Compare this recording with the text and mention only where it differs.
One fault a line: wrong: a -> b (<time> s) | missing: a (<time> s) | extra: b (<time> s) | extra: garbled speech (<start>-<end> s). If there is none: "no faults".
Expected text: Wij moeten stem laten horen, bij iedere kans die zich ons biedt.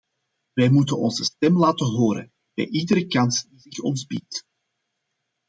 extra: onze (1.0 s)